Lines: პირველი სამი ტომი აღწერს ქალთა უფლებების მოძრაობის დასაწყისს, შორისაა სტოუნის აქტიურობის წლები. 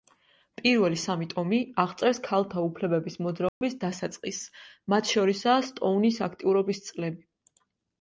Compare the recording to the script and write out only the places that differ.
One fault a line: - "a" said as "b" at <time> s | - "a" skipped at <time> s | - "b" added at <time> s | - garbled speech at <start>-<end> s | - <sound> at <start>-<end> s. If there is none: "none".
- dropout at 3.5-3.6 s
- "მათ" added at 4.9 s